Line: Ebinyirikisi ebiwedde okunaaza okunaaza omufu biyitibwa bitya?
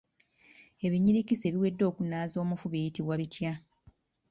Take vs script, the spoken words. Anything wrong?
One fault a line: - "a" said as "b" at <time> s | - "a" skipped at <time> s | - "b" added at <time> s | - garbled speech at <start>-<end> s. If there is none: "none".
- "okunaaza" skipped at 2.4 s